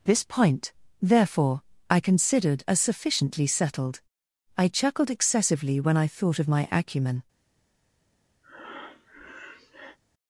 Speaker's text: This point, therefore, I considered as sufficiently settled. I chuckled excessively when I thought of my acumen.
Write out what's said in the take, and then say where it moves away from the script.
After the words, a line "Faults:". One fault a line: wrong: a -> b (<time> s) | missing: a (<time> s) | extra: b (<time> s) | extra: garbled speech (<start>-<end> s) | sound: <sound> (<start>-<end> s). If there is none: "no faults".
This point, therefore, I considered as sufficiently settled. I chuckled excessively when I thought of my acumen.
Faults:
sound: breath (8.4-10.0 s)